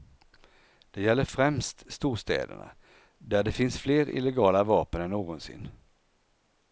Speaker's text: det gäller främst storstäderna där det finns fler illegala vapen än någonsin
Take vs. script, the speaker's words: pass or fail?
pass